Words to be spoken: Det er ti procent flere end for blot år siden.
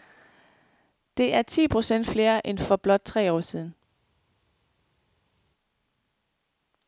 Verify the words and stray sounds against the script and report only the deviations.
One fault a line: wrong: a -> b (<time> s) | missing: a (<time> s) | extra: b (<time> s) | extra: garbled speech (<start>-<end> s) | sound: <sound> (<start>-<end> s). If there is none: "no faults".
extra: tre (3.0 s)